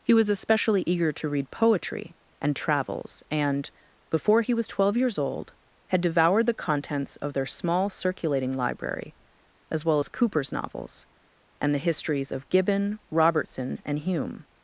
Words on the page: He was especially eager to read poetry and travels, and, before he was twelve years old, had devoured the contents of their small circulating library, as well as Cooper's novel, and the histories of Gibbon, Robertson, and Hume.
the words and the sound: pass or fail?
fail